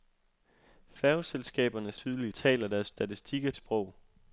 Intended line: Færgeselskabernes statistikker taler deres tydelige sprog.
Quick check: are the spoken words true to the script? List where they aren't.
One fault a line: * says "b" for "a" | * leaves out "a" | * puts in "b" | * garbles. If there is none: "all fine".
* says "tydelige" for "statistikker"
* says "statistikker" for "tydelige"